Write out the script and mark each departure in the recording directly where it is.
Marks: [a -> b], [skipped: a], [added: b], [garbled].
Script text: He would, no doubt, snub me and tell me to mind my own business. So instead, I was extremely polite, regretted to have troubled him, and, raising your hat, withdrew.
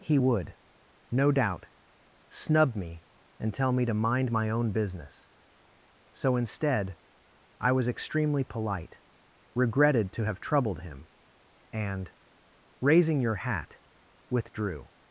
He would, no doubt, snub me and tell me to mind my own business. So instead, I was extremely polite, regretted to have troubled him, and, raising your hat, withdrew.